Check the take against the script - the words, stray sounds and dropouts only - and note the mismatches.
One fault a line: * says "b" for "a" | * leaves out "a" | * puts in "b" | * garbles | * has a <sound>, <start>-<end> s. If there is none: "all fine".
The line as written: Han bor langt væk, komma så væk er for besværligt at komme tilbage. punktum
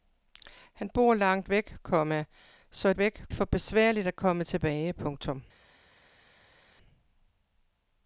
all fine